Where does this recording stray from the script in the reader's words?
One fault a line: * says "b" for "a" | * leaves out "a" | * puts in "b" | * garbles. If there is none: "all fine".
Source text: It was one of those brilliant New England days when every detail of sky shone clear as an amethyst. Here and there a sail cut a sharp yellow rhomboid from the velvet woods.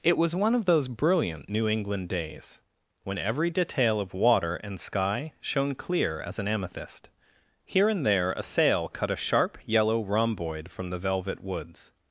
* puts in "water and"